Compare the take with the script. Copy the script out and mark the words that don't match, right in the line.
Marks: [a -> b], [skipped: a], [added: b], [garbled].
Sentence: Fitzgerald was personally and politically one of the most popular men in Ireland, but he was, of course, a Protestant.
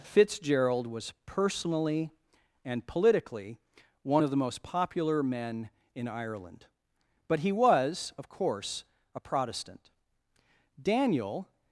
Fitzgerald was personally and politically one of the most popular men in Ireland, but he was, of course, a Protestant. [added: Daniel]